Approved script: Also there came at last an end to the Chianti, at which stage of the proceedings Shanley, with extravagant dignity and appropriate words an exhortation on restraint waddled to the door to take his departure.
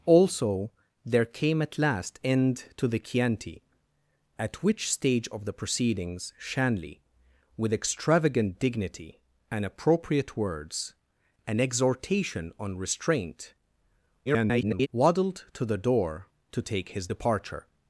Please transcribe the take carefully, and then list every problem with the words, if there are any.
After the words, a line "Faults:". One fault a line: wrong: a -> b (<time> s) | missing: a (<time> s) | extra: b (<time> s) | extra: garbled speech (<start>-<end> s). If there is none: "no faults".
Also there came at last end to the Chianti, at which stage of the proceedings Shanley, with extravagant dignity and appropriate words an exhortation on restraint [garbled] waddled to the door to take his departure.
Faults:
missing: an (2.2 s)
extra: garbled speech (14.3-14.9 s)